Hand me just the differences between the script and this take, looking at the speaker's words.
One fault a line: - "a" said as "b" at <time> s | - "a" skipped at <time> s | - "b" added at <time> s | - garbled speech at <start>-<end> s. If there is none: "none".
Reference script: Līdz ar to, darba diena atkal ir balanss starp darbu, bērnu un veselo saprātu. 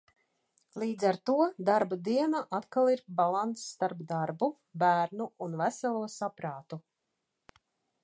none